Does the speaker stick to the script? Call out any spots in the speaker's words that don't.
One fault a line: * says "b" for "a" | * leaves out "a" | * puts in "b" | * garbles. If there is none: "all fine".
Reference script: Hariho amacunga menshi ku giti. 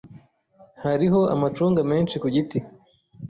all fine